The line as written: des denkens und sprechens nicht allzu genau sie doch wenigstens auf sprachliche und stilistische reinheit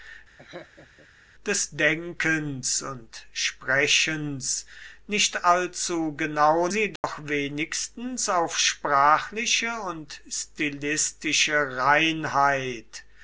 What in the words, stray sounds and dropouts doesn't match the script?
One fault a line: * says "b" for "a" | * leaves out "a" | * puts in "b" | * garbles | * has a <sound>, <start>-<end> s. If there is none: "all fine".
* has a laugh, 0.4-1.1 s
* has a dropout, 7.0-7.0 s